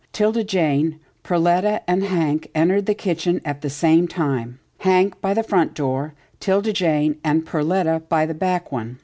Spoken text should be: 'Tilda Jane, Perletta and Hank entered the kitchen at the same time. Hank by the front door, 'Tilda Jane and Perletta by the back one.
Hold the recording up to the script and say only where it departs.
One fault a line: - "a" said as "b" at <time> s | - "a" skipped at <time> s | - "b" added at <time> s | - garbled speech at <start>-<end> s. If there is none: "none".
none